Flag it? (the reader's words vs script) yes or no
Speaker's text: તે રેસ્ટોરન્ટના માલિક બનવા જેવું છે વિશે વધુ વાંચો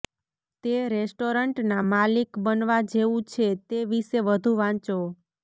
yes